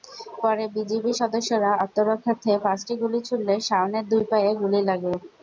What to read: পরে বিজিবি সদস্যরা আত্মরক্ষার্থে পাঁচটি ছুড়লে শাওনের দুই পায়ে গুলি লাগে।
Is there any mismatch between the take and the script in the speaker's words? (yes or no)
yes